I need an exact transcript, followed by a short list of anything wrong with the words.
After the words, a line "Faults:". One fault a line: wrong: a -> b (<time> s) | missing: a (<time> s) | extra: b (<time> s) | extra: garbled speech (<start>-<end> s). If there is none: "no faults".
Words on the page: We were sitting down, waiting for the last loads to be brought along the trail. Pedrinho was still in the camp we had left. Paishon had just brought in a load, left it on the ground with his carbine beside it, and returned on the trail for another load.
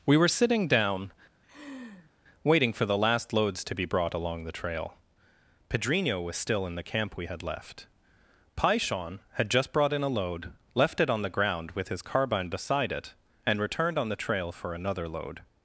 We were sitting down, waiting for the last loads to be brought along the trail. Pedrinho was still in the camp we had left. Paishon had just brought in a load, left it on the ground with his carbine beside it, and returned on the trail for another load.
Faults:
no faults